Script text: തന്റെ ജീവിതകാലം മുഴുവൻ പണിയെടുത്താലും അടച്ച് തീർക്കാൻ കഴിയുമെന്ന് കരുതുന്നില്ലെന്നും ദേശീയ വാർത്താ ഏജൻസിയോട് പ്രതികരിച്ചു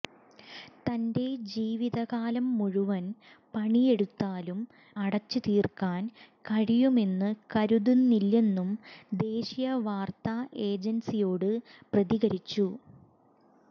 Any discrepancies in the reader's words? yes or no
no